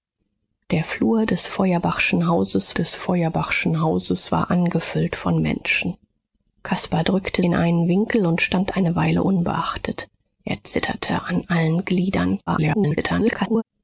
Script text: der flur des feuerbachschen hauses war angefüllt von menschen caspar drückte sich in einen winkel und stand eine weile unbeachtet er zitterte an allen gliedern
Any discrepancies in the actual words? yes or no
yes